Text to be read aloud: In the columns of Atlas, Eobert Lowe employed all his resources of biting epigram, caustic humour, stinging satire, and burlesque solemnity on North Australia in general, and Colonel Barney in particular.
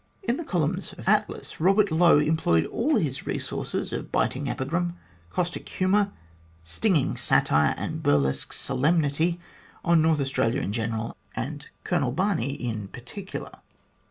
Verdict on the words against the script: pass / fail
pass